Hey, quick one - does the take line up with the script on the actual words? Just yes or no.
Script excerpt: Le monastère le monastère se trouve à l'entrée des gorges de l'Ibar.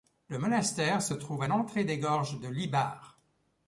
no